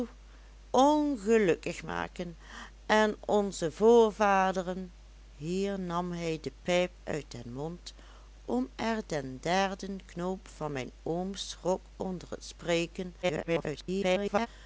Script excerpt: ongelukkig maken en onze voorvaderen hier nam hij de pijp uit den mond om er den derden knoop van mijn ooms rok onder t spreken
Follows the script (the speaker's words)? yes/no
no